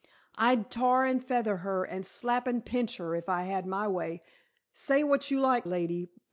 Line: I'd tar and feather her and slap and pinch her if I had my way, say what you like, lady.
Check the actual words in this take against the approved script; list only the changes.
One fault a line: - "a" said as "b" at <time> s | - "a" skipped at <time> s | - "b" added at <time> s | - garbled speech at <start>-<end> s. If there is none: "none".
none